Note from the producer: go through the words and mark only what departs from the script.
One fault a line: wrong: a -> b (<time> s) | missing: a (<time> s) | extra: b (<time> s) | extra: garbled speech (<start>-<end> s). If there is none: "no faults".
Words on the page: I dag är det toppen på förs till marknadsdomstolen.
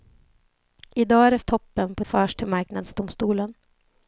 no faults